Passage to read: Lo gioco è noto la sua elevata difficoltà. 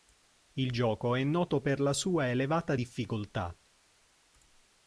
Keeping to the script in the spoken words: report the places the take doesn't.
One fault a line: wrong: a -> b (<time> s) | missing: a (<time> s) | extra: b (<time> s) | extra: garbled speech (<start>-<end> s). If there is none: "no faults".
wrong: Lo -> Il (0.5 s)
extra: per (1.6 s)